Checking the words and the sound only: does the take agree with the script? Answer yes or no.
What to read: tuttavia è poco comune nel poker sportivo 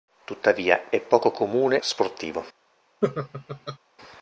no